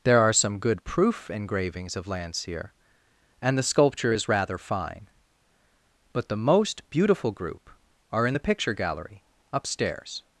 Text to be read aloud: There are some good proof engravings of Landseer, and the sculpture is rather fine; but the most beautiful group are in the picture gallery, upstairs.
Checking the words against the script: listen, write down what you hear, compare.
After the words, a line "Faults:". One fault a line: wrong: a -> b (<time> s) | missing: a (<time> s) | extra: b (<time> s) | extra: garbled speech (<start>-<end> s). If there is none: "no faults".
There are some good proof engravings of Landseer, and the sculpture is rather fine; but the most beautiful group are in the picture gallery, upstairs.
Faults:
no faults